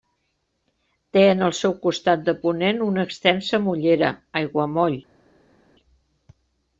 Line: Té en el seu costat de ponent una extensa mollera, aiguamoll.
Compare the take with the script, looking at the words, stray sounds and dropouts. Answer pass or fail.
pass